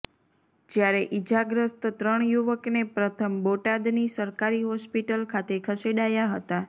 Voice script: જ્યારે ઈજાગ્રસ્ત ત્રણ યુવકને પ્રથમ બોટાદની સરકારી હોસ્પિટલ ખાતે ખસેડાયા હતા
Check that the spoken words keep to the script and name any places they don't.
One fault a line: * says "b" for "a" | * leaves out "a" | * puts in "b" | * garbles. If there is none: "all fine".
all fine